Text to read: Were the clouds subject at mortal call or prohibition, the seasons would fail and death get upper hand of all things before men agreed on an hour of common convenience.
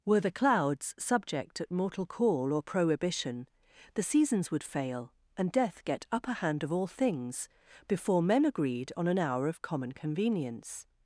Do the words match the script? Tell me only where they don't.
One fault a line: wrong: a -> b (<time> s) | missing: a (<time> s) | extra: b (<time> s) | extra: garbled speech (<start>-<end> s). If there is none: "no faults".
no faults